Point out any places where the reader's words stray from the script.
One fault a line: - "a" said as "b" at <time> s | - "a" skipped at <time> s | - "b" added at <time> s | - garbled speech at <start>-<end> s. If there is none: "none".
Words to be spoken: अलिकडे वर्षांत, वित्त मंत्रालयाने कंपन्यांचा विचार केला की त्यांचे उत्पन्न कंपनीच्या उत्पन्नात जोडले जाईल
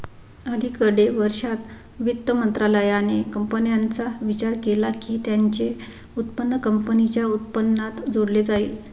none